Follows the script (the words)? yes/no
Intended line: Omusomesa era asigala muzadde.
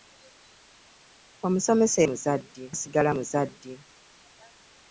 no